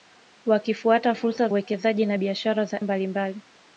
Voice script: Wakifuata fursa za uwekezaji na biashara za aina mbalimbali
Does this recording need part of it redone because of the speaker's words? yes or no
yes